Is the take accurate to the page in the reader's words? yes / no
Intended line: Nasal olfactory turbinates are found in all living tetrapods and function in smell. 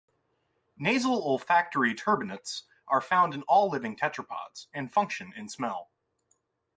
yes